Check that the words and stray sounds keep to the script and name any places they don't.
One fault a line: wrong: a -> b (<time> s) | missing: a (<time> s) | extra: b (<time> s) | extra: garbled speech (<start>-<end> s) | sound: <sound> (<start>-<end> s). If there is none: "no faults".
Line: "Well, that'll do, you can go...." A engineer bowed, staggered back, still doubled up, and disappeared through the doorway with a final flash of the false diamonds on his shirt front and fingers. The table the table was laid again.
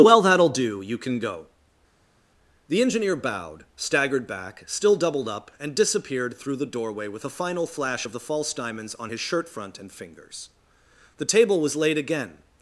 wrong: A -> The (2.7 s)
missing: the table (11.6 s)